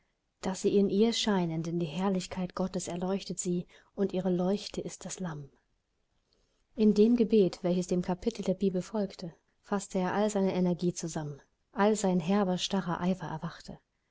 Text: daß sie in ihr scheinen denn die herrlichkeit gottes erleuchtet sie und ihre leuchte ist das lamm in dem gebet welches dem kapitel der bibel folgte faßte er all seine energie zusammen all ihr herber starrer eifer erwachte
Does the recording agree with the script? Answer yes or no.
no